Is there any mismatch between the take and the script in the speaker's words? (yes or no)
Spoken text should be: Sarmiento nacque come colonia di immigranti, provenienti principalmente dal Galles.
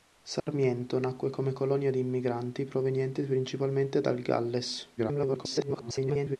yes